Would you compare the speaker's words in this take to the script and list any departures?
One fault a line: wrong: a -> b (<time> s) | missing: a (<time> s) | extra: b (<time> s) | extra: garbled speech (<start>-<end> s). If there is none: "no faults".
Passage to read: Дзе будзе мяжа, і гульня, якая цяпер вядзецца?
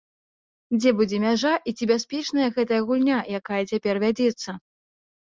extra: ці бяспечная гэтая (1.8 s)